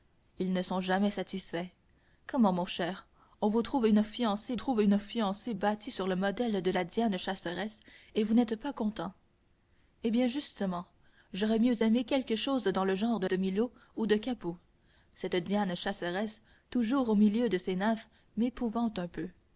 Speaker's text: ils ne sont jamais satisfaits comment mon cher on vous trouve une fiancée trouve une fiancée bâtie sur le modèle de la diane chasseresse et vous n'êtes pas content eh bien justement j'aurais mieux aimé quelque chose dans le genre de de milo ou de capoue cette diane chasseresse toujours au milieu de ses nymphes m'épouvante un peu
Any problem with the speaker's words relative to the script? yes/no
no